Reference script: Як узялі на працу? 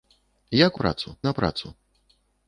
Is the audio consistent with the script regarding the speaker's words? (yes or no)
no